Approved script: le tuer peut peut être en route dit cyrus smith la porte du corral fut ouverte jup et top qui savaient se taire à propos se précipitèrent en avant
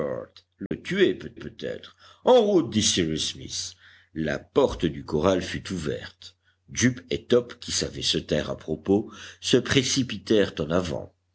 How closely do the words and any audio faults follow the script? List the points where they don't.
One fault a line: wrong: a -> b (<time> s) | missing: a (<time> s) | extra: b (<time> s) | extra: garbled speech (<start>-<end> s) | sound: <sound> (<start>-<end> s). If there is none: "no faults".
sound: dropout (0.7-0.7 s)